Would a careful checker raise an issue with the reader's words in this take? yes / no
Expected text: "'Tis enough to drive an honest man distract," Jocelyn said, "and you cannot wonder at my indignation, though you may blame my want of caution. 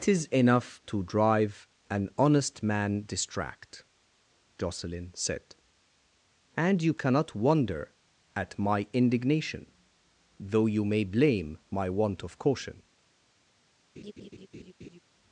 no